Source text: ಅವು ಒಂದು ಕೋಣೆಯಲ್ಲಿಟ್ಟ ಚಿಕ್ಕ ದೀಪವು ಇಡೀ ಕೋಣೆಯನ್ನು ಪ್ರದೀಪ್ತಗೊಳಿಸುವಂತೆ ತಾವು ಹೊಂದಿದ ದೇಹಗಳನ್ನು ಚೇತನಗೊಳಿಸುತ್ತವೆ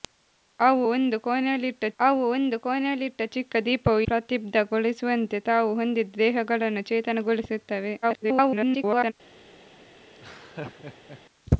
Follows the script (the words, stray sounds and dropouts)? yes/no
no